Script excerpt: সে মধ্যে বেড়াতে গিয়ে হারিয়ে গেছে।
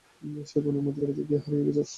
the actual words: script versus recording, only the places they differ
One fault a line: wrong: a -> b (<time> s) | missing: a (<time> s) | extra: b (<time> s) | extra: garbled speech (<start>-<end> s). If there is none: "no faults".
extra: বনের (0.6 s)